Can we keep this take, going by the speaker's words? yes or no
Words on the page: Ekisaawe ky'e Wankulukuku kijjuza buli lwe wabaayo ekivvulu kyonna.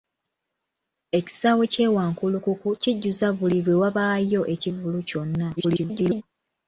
no